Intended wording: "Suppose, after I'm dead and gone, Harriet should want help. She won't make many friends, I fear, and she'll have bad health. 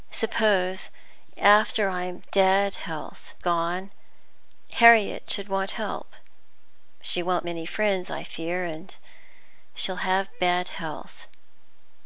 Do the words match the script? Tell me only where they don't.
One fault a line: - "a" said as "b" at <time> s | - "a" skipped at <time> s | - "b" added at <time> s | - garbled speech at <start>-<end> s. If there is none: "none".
- "and" said as "health" at 2.8 s
- "make" skipped at 7.5 s